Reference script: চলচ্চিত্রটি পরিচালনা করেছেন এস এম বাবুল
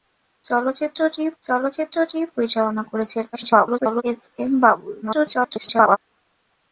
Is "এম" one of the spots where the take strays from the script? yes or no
no